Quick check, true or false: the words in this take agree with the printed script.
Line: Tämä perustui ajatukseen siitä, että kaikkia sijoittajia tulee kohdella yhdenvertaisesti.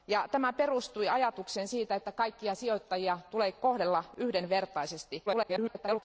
false